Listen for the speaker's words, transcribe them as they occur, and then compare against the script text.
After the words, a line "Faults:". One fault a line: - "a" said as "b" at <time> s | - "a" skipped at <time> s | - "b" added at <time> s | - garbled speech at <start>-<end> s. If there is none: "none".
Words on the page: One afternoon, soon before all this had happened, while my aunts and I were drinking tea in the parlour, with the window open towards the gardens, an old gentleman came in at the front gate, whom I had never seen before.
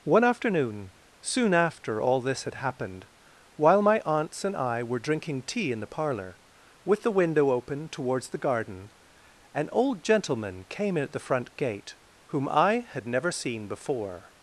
One afternoon, soon after all this had happened, while my aunts and I were drinking tea in the parlour, with the window open towards the garden, an old gentleman came in at the front gate, whom I had never seen before.
Faults:
- "before" said as "after" at 1.5 s
- "gardens" said as "garden" at 8.4 s